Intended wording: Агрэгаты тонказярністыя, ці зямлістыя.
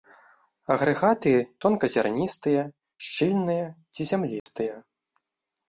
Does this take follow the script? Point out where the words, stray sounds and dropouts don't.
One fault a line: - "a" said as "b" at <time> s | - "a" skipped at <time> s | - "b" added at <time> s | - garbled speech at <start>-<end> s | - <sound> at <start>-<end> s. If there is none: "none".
- "шчыльныя" added at 3.1 s
- dropout at 4.4-4.5 s